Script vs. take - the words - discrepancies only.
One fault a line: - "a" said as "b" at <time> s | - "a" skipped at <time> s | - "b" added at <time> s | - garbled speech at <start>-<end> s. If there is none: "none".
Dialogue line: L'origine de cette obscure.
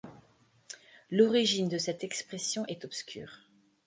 - "expression est" added at 2.0 s